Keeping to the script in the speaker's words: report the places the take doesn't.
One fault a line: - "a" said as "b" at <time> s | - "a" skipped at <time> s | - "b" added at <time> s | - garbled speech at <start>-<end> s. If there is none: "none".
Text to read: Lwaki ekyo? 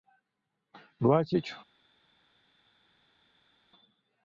none